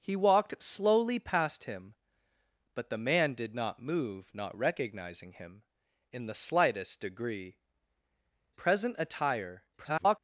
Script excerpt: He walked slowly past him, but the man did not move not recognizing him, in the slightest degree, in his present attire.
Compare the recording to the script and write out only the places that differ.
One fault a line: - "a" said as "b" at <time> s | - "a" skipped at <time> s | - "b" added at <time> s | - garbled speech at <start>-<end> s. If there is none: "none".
- "in his" skipped at 7.6 s
- garbled speech at 9.7-10.2 s